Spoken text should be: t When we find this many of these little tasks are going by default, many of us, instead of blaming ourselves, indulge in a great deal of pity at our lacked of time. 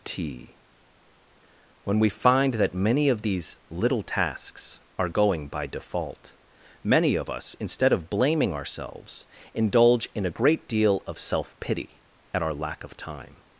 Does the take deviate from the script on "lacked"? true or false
true